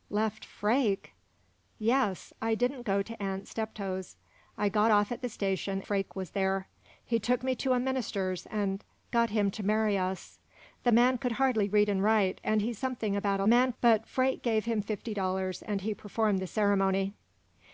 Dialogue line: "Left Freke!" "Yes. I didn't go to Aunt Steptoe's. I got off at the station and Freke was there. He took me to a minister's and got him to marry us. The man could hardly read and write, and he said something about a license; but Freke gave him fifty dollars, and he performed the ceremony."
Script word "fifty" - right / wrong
right